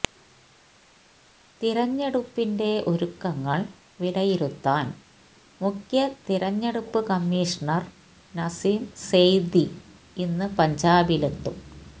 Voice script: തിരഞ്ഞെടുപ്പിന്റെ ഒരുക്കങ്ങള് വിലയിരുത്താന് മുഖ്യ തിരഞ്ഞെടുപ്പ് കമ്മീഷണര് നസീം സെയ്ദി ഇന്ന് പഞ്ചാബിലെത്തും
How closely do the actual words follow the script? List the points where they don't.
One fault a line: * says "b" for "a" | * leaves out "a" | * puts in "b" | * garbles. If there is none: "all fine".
all fine